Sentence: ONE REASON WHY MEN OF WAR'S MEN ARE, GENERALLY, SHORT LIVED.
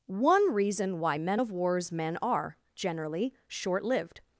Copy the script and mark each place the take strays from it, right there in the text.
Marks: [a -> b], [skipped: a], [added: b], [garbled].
ONE REASON WHY MEN OF WAR'S MEN ARE, GENERALLY, SHORT LIVED.